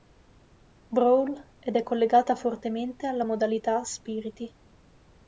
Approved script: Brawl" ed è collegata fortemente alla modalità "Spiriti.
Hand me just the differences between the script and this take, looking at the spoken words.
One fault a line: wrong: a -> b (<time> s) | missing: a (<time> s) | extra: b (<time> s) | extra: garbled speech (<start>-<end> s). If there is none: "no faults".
no faults